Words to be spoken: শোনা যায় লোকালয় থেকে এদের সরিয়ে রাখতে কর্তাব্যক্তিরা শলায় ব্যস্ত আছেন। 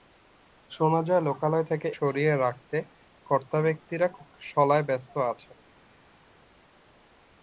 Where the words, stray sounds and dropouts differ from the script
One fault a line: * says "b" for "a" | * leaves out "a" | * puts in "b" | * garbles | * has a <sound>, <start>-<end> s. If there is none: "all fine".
* leaves out "এদের"